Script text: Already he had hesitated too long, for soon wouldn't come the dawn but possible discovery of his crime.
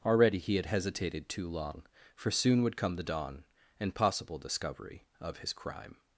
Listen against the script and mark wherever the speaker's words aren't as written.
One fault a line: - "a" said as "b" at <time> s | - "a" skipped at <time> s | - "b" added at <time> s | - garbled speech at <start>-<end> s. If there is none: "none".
- "wouldn't" said as "would" at 2.6 s
- "but" said as "and" at 3.8 s